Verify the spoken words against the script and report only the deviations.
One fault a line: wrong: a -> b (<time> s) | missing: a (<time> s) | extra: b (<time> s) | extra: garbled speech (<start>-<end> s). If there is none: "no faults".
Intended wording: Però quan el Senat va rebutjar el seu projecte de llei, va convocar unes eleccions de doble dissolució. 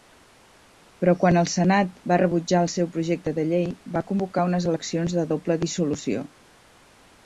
no faults